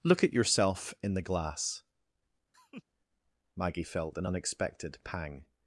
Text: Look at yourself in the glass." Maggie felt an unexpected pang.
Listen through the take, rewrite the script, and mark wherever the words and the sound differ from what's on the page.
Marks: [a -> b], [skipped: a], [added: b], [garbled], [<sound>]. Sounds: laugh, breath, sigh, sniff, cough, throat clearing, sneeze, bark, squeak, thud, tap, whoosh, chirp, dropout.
Look at yourself in the glass." [laugh] Maggie felt an unexpected pang.